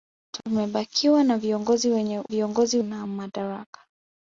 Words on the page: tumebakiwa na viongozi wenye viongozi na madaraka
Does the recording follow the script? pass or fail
pass